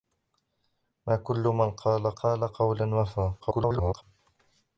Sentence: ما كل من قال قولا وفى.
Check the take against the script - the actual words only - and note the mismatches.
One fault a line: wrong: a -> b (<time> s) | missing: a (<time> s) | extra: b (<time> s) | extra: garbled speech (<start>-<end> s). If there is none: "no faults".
extra: قال (2.1 s)
extra: garbled speech (3.4-4.0 s)